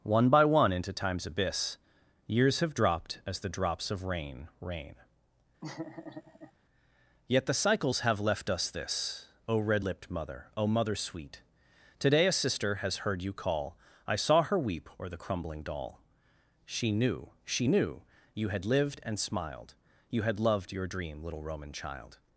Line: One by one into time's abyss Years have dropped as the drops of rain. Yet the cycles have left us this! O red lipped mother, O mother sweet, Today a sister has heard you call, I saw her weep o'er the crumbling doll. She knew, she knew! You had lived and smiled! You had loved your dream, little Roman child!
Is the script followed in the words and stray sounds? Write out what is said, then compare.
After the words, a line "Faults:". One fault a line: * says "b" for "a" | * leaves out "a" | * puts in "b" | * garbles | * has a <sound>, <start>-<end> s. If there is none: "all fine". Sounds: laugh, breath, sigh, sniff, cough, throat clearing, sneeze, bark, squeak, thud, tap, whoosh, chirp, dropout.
One by one into time's abyss Years have dropped as the drops of rain rain. Yet the cycles have left us this! O red lipped mother, O mother sweet, Today a sister has heard you call, I saw her weep o'er the crumbling doll. She knew, she knew! You had lived and smiled! You had loved your dream, little Roman child!
Faults:
* puts in "rain"
* has a laugh, 5.6-6.5 s